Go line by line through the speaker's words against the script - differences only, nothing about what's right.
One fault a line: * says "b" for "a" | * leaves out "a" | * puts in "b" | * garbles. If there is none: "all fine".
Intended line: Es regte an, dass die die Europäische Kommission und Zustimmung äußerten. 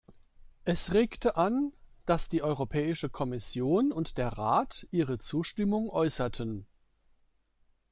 * leaves out "die"
* puts in "der Rat ihre"